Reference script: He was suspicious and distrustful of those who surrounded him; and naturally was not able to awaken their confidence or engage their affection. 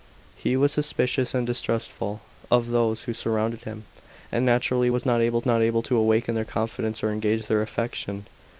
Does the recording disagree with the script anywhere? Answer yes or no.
yes